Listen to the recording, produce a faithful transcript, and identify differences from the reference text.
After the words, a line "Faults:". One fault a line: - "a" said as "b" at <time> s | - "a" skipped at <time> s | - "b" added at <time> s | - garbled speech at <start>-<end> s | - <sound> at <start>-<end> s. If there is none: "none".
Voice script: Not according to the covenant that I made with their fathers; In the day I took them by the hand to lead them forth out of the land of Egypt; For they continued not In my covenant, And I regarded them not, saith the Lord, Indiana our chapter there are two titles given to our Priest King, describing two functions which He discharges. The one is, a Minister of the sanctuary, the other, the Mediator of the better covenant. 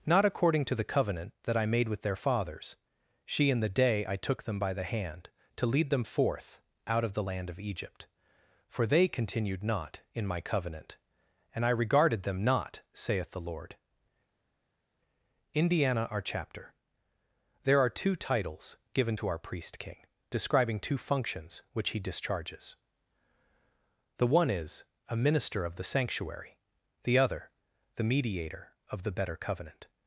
Not according to the covenant that I made with their fathers; she In the day I took them by the hand to lead them forth out of the land of Egypt; For they continued not In my covenant, And I regarded them not, saith the Lord, Indiana our chapter there are two titles given to our Priest King, describing two functions which He discharges. The one is, a Minister of the sanctuary, the other, the Mediator of the better covenant.
Faults:
- "she" added at 3.2 s